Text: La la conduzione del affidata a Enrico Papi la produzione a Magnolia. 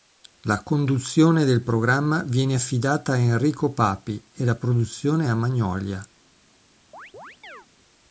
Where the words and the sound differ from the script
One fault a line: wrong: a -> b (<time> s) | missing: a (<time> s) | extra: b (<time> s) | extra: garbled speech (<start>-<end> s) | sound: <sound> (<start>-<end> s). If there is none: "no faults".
missing: la (0.6 s)
extra: programma viene (1.6 s)
extra: e (4.3 s)
sound: chirp (6.9-7.7 s)